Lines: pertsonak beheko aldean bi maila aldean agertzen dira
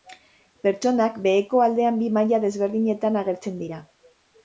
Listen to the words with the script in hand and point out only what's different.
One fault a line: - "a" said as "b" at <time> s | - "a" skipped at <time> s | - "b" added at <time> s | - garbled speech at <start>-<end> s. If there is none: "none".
- "aldean" said as "desberdinetan" at 2.5 s